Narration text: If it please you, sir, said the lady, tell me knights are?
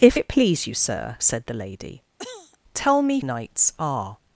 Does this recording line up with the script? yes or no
yes